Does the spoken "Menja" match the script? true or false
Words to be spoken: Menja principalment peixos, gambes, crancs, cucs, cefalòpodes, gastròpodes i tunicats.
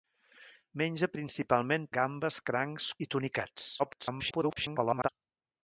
true